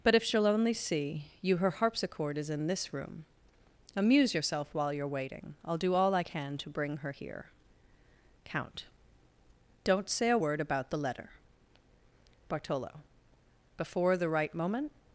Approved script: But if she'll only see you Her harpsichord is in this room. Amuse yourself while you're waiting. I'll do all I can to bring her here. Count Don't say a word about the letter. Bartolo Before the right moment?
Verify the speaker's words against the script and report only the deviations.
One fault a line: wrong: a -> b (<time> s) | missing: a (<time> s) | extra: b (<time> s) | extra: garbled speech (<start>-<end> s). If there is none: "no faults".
no faults